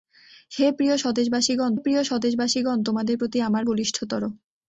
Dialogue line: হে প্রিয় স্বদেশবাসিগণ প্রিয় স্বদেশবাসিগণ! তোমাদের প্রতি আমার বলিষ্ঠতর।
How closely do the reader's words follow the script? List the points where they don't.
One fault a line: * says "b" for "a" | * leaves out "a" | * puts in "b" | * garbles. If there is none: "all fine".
all fine